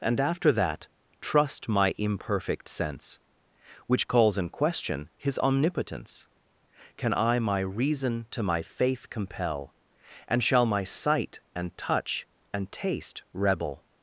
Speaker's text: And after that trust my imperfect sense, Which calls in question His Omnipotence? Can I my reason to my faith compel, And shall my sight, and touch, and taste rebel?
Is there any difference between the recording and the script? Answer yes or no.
no